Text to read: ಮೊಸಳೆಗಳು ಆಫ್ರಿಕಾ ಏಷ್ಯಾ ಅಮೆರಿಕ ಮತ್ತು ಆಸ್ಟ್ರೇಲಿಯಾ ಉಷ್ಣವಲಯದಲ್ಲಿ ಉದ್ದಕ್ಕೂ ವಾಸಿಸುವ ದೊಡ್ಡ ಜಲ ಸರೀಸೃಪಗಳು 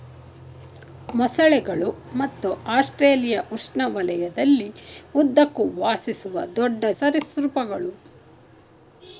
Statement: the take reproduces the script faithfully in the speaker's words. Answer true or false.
false